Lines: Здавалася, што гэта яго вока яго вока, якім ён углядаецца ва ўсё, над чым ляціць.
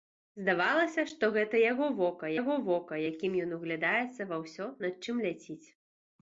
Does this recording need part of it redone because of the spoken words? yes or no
no